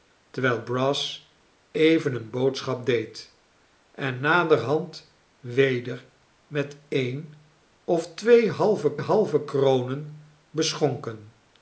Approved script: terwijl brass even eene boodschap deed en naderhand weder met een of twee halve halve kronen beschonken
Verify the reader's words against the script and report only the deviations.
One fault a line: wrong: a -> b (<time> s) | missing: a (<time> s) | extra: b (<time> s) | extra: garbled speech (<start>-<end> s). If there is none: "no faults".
no faults